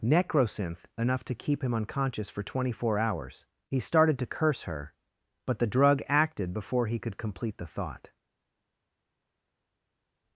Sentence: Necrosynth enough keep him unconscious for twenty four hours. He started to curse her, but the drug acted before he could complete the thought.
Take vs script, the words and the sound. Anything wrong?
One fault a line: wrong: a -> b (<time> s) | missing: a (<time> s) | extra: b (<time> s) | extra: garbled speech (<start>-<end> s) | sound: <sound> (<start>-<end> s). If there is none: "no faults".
extra: to (1.2 s)